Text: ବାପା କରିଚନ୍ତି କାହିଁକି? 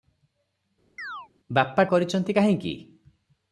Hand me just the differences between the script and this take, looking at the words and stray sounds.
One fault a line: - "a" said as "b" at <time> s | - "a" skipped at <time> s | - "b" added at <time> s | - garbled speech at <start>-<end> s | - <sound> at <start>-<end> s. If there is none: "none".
- chirp at 1.0-1.3 s